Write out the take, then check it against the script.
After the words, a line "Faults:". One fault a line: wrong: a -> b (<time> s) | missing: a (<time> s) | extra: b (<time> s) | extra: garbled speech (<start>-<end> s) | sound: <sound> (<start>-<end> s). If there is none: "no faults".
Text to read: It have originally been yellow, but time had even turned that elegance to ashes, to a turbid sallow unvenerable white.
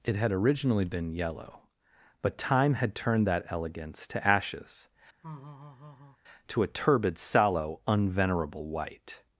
It had originally been yellow, but time had turned that elegance to ashes, to a turbid sallow unvenerable white.
Faults:
wrong: have -> had (0.1 s)
missing: even (3.0 s)
sound: laugh (5.2-6.2 s)